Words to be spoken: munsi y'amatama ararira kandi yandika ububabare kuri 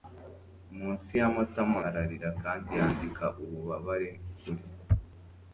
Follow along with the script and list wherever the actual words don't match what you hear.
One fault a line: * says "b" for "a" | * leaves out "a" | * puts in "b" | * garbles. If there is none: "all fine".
all fine